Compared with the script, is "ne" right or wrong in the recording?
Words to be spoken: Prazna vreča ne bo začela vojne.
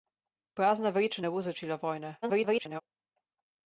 right